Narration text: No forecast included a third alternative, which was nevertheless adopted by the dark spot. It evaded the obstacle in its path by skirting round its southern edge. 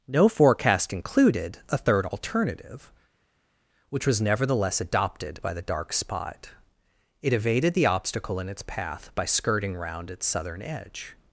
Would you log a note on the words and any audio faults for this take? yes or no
no